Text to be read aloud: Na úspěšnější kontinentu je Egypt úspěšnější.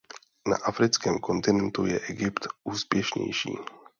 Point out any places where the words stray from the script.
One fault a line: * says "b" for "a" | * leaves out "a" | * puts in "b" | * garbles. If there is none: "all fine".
* says "africkém" for "úspěšnější"